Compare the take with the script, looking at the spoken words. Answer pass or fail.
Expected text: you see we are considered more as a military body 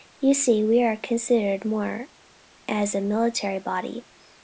pass